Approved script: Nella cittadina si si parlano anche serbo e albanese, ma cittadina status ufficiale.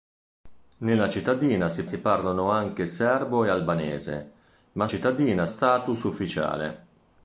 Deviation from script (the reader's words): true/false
false